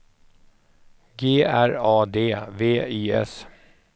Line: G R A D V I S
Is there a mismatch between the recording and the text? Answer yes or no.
no